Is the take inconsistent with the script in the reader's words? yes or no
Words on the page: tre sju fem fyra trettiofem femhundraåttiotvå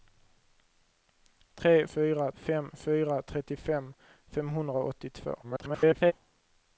yes